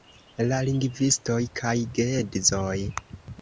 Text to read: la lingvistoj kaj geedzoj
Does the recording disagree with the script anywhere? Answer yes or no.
no